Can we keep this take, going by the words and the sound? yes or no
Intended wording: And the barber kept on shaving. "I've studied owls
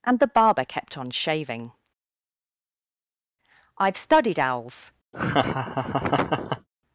no